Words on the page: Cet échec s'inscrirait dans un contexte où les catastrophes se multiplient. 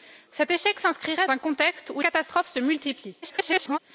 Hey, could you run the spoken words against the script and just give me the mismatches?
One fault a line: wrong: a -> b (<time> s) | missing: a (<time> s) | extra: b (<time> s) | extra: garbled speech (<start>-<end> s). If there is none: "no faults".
missing: dans (1.3 s)
missing: les (2.0 s)
extra: garbled speech (3.2-3.8 s)